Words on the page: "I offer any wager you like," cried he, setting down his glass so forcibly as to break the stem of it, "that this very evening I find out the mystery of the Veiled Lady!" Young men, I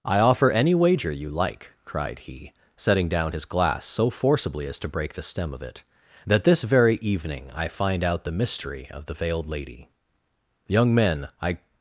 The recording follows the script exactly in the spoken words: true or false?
true